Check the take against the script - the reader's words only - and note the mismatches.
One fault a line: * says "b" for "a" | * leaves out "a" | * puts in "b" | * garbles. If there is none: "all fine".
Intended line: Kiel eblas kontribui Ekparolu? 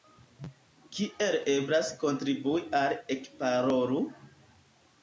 * puts in "al"